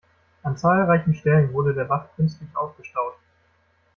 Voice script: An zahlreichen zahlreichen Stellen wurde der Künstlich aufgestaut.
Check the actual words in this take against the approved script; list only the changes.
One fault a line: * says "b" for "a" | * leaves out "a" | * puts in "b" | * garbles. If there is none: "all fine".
* leaves out "zahlreichen"
* puts in "Bach"